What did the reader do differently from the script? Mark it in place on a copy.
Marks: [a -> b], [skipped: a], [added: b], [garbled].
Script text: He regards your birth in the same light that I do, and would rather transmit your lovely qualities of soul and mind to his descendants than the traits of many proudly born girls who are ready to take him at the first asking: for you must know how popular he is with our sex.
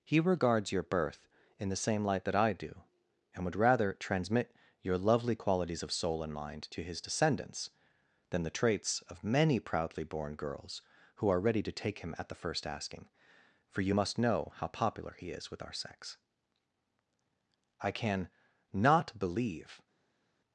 He regards your birth in the same light that I do, and would rather transmit your lovely qualities of soul and mind to his descendants than the traits of many proudly born girls who are ready to take him at the first asking: for you must know how popular he is with our sex. [added: I can not believe]